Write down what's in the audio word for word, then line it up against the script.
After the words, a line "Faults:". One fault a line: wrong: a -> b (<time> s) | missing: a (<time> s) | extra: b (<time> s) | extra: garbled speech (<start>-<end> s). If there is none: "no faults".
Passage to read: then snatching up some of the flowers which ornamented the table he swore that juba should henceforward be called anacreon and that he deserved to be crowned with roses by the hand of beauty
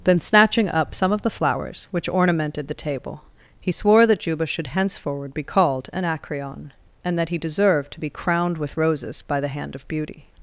then snatching up some of the flowers which ornamented the table he swore that juba should henceforward be called anacreon and that he deserved to be crowned with roses by the hand of beauty
Faults:
no faults